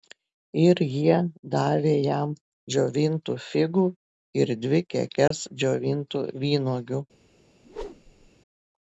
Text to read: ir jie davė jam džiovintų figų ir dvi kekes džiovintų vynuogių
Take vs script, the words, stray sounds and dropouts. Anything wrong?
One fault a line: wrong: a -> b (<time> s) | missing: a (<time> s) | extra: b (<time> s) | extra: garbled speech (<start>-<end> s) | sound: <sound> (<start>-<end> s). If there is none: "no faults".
sound: dropout (5.3-5.3 s)
sound: whoosh (7.6-8.3 s)